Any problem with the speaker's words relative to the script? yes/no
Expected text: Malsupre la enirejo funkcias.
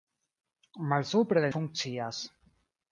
yes